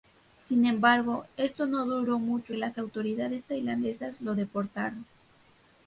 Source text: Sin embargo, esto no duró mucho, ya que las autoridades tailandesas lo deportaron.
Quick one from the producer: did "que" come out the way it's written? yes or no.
no